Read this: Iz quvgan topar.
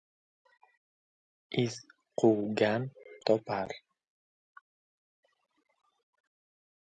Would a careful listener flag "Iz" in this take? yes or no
no